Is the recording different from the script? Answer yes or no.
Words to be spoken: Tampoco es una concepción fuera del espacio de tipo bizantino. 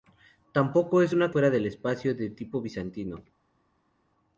yes